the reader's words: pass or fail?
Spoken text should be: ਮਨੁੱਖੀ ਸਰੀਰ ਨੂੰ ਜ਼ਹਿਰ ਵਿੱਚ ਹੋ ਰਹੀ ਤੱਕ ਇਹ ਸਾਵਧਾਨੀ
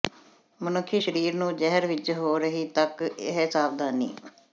pass